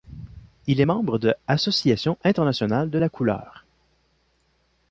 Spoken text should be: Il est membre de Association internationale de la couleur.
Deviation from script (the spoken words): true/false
false